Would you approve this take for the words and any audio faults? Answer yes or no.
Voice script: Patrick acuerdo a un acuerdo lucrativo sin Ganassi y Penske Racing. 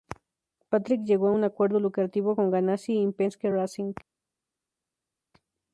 no